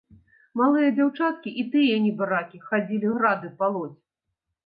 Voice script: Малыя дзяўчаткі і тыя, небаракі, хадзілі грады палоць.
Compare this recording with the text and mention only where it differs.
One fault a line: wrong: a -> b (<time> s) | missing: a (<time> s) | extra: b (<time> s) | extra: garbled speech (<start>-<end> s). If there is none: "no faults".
no faults